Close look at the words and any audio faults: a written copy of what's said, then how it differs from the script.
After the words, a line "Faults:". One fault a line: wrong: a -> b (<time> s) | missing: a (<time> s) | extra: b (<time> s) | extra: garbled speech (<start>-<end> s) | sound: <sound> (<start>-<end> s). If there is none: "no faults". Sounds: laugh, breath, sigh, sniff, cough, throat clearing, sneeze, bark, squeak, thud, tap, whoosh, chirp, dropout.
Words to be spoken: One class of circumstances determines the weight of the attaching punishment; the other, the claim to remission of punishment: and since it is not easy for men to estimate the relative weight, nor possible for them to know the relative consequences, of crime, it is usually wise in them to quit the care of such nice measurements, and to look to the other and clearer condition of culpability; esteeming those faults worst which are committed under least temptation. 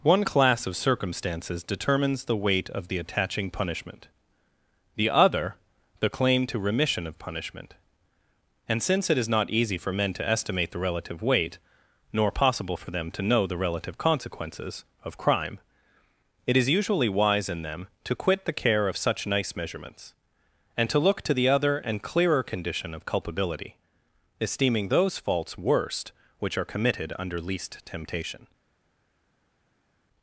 One class of circumstances determines the weight of the attaching punishment; the other, the claim to remission of punishment: and since it is not easy for men to estimate the relative weight, nor possible for them to know the relative consequences, of crime, it is usually wise in them to quit the care of such nice measurements, and to look to the other and clearer condition of culpability; esteeming those faults worst which are committed under least temptation.
Faults:
no faults